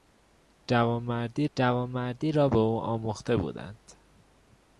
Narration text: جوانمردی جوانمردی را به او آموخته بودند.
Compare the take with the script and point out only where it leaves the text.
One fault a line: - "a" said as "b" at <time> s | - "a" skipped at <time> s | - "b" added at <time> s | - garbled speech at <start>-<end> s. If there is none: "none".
none